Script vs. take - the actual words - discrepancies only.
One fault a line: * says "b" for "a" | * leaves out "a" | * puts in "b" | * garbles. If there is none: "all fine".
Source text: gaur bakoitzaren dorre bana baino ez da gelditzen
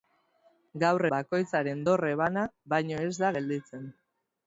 all fine